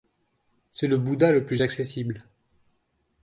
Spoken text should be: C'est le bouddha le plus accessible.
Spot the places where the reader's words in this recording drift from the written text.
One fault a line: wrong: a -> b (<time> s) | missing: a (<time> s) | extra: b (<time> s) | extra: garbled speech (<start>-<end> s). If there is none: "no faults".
no faults